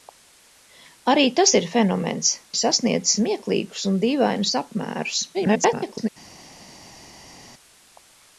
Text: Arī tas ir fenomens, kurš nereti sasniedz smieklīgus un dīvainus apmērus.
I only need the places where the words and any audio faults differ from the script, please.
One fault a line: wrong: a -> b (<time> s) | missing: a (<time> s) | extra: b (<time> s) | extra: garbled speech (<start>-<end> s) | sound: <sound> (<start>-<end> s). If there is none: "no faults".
missing: kurš nereti (2.3 s)
extra: garbled speech (5.3-6.1 s)